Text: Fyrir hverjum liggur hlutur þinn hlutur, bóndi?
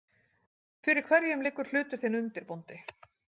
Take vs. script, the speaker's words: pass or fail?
fail